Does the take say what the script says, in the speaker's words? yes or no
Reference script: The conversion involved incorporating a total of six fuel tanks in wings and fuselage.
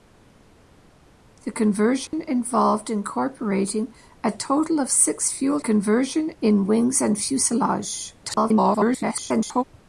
no